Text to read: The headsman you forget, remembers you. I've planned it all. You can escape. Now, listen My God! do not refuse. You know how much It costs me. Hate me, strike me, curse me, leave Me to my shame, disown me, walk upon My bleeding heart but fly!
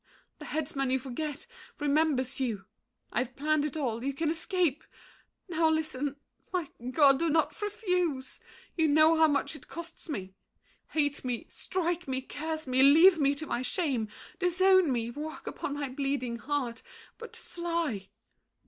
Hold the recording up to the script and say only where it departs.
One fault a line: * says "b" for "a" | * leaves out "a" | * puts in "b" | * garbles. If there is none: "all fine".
all fine